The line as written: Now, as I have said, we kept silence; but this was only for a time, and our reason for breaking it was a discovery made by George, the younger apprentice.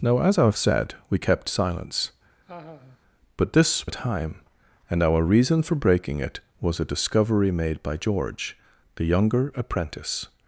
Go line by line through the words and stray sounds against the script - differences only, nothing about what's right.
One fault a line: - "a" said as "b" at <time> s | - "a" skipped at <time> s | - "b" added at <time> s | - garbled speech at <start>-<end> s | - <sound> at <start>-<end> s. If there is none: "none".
- laugh at 2.5-3.0 s
- "was only for" skipped at 3.9 s